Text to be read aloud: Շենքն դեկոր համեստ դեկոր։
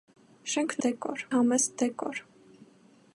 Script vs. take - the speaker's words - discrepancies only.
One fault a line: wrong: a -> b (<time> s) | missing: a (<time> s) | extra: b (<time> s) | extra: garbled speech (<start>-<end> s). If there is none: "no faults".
no faults